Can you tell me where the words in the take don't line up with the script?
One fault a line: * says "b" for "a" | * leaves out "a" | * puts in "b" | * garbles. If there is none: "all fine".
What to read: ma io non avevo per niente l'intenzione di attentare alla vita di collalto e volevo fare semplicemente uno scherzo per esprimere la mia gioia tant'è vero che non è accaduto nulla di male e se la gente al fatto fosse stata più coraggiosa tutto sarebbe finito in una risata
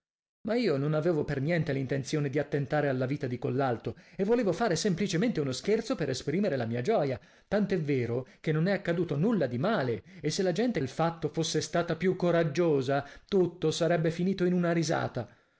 all fine